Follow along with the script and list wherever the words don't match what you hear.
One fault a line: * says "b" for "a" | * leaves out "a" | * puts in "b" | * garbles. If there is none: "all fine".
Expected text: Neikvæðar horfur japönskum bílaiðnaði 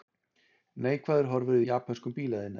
all fine